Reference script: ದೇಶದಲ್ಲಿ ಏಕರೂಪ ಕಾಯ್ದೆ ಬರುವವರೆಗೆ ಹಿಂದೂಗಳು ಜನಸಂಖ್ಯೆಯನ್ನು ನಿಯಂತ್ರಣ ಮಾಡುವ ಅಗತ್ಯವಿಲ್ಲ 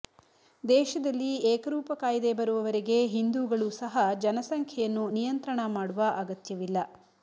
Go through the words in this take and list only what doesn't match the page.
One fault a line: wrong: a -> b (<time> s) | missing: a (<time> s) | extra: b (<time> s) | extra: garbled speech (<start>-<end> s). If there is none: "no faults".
extra: ಸಹ (3.8 s)